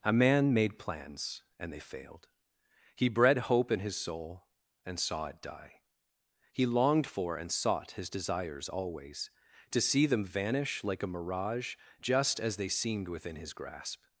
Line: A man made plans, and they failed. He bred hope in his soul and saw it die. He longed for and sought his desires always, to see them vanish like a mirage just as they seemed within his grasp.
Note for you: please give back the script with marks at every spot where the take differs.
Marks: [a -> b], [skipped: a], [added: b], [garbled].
A man made plans, and they failed. He bred hope in his soul and saw it die. He longed for and sought his desires always, to see them vanish like a mirage just as they seemed within his grasp.